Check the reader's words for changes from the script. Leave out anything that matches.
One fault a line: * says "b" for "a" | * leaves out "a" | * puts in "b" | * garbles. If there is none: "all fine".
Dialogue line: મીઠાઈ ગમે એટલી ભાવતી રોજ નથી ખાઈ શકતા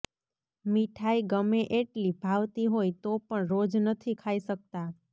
* puts in "હોય તો પણ"